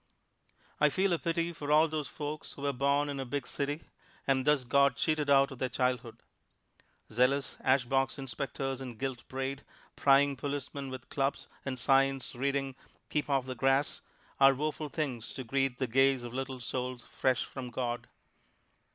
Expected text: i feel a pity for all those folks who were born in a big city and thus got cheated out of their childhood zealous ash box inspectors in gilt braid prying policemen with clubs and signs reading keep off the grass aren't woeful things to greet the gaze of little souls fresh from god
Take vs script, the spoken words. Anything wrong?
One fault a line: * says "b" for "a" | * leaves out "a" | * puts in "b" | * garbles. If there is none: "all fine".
* says "are" for "aren't"